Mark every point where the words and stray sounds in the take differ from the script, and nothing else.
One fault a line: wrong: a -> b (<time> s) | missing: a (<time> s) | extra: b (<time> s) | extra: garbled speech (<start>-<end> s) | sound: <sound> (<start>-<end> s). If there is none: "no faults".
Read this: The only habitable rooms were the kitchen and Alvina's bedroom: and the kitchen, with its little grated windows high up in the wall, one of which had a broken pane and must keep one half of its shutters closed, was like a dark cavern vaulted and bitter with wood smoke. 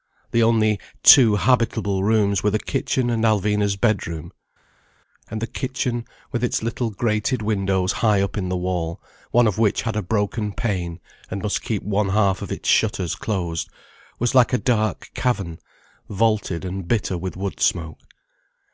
extra: two (1.0 s)